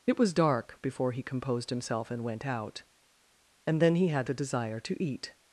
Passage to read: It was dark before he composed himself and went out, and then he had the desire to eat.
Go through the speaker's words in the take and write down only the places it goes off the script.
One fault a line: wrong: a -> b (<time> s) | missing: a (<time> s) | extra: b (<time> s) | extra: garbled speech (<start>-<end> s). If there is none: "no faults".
no faults